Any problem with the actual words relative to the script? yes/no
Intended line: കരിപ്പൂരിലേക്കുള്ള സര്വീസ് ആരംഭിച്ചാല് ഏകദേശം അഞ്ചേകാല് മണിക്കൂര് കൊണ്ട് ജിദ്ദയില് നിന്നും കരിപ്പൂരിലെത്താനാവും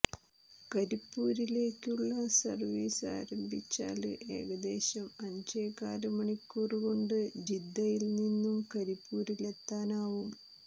no